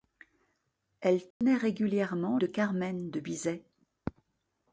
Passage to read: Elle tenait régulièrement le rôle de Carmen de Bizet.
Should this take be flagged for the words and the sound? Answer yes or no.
yes